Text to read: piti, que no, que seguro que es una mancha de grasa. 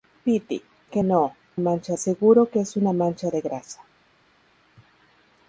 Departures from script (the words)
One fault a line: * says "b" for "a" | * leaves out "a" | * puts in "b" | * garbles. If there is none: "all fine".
* says "mancha" for "que"